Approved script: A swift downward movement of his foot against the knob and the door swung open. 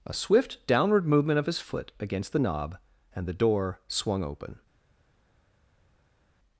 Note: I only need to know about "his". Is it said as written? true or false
true